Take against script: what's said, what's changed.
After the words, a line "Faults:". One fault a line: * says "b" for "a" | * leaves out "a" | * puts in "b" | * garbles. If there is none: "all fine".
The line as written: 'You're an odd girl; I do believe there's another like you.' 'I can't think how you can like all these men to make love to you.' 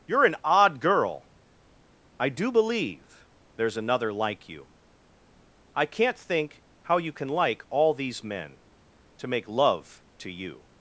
'You're an odd girl; I do believe there's another like you.' 'I can't think how you can like all these men to make love to you.'
Faults:
all fine